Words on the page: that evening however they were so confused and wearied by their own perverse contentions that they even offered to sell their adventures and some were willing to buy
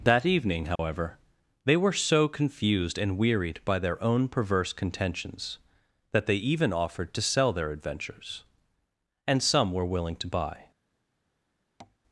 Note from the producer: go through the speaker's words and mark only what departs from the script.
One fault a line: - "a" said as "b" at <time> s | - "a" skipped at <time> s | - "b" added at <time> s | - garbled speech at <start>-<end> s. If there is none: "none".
none